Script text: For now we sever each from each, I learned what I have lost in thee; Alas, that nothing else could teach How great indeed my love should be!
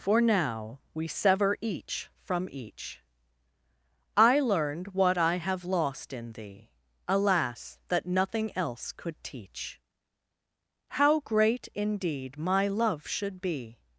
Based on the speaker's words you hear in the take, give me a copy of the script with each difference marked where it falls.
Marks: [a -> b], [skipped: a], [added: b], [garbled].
For now we sever each from each, I learned what I have lost in thee; Alas, that nothing else could teach How great indeed my love should be!